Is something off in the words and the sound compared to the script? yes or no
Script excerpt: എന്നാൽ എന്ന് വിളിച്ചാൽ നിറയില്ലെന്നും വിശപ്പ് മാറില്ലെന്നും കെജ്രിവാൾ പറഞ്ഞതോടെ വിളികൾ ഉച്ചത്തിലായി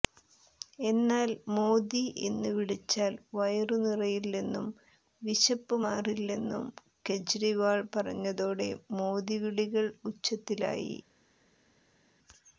yes